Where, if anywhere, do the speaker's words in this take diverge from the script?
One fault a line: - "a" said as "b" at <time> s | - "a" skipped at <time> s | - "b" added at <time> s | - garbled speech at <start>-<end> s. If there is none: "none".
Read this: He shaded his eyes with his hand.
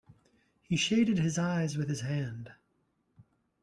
none